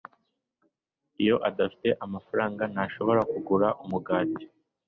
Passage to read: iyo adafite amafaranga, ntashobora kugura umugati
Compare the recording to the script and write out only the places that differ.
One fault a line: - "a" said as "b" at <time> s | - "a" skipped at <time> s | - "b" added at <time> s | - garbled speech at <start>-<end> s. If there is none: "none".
none